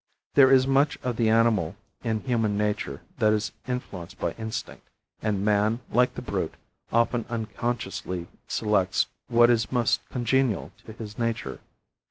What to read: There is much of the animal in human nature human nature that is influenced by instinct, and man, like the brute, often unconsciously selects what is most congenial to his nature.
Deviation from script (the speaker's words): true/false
true